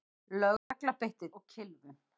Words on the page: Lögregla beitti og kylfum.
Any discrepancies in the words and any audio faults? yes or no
yes